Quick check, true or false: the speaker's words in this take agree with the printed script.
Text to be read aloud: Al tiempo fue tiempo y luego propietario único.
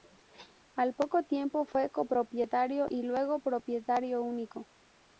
false